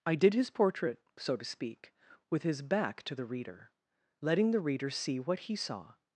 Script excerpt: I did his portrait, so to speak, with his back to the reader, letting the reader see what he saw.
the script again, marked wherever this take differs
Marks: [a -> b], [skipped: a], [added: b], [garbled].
I did his portrait, so to speak, with his back to the reader, letting the reader see what he saw.